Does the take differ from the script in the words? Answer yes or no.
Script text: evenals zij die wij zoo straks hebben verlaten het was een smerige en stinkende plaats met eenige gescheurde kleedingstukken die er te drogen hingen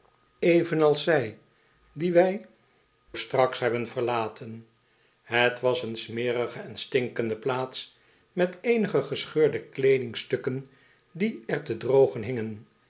yes